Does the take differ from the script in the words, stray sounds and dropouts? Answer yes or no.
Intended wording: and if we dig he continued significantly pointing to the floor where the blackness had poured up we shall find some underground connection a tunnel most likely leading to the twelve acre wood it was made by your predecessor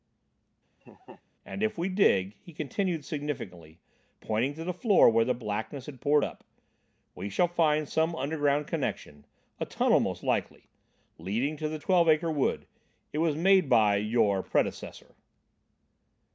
yes